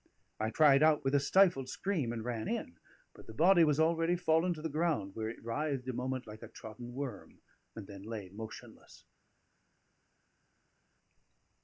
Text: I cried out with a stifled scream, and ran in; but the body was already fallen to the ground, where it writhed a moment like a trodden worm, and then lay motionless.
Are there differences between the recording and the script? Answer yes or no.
no